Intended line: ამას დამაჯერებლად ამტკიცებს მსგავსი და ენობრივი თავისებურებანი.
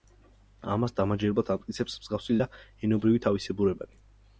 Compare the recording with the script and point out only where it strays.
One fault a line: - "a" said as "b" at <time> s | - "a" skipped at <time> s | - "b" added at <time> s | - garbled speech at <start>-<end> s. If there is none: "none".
none